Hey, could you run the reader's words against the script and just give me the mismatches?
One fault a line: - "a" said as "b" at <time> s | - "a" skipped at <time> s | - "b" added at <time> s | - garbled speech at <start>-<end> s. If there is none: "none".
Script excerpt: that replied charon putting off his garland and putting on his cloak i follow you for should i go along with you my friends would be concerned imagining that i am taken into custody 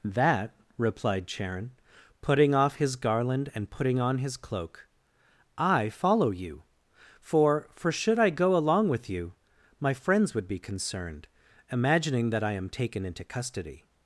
- "for" added at 7.7 s